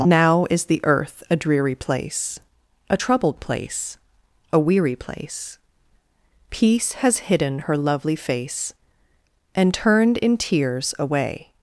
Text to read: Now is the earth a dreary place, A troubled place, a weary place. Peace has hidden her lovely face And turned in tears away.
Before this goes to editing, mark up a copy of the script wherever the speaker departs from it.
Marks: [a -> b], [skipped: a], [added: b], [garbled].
Now is the earth a dreary place, A troubled place, a weary place. Peace has hidden her lovely face And turned in tears away.